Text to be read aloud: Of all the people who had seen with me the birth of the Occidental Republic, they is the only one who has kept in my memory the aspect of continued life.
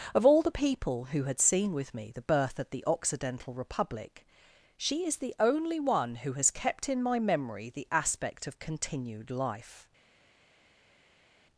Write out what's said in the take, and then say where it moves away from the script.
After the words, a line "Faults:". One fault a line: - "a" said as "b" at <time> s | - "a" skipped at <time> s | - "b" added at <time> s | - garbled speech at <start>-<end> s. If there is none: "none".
Of all the people who had seen with me the birth of the Occidental Republic, she is the only one who has kept in my memory the aspect of continued life.
Faults:
- "they" said as "she" at 4.8 s